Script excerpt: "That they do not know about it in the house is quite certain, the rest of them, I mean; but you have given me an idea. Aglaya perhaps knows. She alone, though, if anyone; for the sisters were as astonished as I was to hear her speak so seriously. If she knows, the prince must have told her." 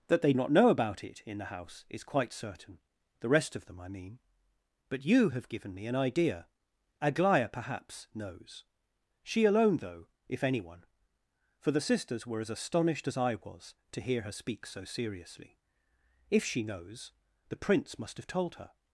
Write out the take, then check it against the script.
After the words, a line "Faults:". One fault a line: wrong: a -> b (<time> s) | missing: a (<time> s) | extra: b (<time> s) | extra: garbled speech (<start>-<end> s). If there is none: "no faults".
"That they not know about it in the house is quite certain, the rest of them, I mean; but you have given me an idea. Aglaya perhaps knows. She alone, though, if anyone; for the sisters were as astonished as I was to hear her speak so seriously. If she knows, the prince must have told her."
Faults:
missing: do (0.3 s)